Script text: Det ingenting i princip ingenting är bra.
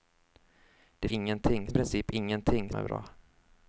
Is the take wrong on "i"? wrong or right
right